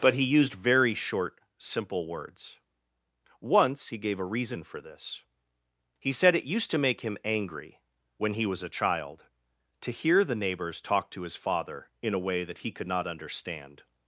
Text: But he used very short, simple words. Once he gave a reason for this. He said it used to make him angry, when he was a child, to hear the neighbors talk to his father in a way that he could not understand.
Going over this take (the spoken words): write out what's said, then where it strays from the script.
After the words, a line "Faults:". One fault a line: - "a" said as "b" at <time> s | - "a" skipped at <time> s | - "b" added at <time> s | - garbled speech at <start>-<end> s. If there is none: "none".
But he used very short, simple words. Once he gave a reason for this. He said it used to make him angry, when he was a child, to hear the neighbors talk to his father in a way that he could not understand.
Faults:
none